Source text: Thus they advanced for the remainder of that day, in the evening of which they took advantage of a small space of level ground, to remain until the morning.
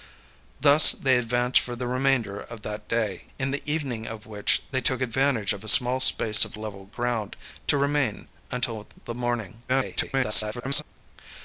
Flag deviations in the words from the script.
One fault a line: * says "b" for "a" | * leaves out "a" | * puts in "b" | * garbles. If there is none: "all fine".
* garbles